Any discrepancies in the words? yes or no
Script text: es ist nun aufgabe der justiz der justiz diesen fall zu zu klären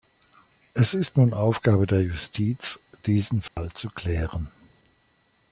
yes